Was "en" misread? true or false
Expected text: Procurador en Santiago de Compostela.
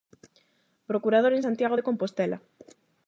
false